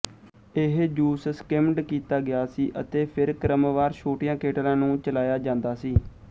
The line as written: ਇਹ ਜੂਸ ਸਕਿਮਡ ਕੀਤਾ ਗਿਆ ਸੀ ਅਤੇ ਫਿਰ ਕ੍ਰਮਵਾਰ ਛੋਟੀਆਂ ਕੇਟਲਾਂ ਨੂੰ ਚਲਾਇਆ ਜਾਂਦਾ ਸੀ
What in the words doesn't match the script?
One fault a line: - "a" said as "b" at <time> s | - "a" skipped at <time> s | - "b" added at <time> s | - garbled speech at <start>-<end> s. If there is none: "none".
none